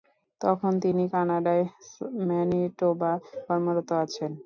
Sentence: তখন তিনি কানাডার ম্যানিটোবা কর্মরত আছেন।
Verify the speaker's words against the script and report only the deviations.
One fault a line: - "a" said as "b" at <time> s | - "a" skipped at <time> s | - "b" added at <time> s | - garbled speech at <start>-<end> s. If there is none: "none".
none